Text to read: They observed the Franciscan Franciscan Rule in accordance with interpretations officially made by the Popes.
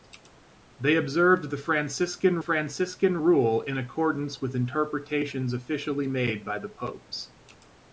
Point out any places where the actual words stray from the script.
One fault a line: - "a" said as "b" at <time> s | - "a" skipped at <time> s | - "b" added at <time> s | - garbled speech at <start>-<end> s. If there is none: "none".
none